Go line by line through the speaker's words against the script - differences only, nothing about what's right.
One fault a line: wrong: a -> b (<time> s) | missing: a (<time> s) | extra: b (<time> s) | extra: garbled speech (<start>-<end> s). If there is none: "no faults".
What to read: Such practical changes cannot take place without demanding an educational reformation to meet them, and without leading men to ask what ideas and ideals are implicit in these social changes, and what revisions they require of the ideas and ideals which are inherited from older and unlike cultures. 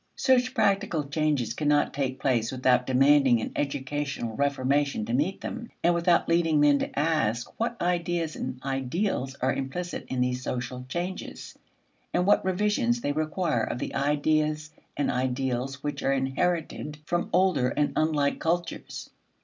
no faults